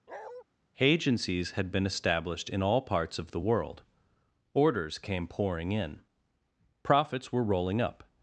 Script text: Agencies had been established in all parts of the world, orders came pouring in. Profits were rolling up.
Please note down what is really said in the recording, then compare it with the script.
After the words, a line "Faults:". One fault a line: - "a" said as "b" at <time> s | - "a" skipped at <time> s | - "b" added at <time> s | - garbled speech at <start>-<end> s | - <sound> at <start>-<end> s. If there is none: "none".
Agencies had been established in all parts of the world, orders came pouring in. Profits were rolling up.
Faults:
- bark at 0.1-0.4 s